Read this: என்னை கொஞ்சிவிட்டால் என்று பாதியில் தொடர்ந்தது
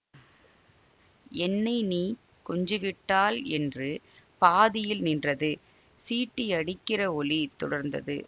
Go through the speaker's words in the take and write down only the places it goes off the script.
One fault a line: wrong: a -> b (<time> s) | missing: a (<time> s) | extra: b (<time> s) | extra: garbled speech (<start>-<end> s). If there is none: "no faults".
extra: நீ (1.8 s)
extra: நின்றது சீட்டியடிக்கிற ஒலி (5.0 s)